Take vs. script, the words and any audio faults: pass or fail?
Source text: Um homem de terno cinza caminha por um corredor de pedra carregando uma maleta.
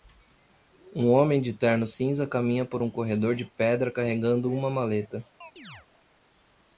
fail